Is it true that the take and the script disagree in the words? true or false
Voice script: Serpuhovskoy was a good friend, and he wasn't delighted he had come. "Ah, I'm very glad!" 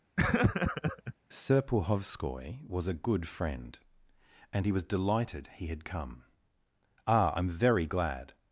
true